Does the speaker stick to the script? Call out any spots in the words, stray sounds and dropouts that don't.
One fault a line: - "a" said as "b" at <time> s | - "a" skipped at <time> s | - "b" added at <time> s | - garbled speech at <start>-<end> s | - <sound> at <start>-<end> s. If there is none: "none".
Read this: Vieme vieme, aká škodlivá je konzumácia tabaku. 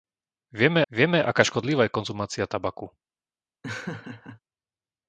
- laugh at 3.6-4.4 s